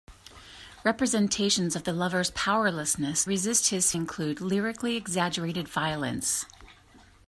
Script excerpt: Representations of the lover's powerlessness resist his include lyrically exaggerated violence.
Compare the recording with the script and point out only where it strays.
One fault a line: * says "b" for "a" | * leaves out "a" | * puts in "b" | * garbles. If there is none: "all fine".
all fine